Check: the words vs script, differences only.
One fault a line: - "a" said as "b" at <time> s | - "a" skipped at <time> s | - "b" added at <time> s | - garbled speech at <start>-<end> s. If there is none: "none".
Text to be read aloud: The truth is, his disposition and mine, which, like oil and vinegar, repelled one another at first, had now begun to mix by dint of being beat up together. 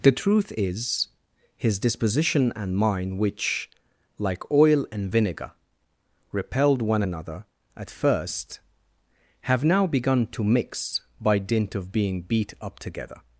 - "had" said as "have" at 9.4 s